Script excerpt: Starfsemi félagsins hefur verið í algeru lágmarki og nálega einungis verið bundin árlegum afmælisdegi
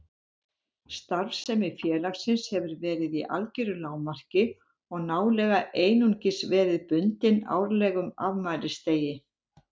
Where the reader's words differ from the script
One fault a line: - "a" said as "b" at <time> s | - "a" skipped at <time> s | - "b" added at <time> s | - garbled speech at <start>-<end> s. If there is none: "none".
none